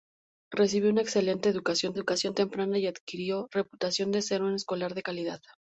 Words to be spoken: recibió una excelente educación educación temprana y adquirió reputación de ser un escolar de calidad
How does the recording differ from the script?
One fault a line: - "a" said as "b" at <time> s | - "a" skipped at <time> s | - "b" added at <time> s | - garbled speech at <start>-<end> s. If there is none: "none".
none